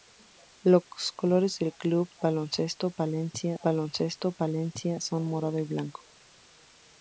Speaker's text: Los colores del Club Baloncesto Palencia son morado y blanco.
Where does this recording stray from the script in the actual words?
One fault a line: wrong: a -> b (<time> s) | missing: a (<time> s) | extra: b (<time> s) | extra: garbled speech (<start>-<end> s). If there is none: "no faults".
extra: Baloncesto Palencia (3.6 s)